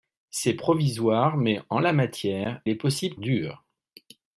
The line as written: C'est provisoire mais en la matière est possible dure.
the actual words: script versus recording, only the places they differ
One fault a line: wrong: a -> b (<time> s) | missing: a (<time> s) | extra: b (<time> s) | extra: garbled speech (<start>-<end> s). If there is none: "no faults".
no faults